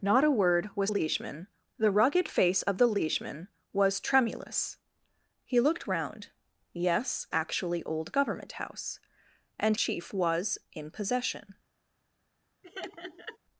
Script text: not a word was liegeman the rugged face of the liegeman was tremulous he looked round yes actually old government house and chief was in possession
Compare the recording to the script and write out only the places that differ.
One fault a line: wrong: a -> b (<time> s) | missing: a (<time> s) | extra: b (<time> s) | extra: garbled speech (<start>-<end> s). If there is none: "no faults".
no faults